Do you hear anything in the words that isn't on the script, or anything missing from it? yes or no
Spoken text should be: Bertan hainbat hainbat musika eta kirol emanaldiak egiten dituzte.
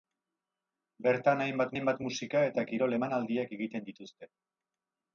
no